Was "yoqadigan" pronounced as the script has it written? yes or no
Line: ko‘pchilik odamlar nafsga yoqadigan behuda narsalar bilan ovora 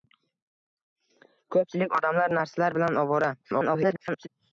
no